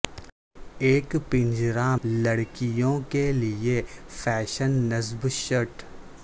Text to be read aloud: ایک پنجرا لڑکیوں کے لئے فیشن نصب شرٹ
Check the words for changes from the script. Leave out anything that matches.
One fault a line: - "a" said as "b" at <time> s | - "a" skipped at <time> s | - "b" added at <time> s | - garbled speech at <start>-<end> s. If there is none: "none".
none